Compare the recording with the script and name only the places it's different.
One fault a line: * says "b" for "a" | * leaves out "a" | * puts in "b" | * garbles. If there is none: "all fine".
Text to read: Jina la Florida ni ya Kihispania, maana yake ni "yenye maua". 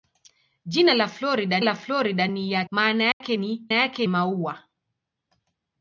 * puts in "la Florida"
* leaves out "Kihispania"
* says "yake" for "yenye"